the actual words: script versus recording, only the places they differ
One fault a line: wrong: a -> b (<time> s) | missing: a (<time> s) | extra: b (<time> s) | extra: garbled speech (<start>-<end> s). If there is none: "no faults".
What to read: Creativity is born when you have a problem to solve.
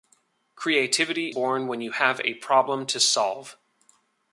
missing: is (1.4 s)